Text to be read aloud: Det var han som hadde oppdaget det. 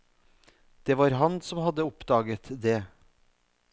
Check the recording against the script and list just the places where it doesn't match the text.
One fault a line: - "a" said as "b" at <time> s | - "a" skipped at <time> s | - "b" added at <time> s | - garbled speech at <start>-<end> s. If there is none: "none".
none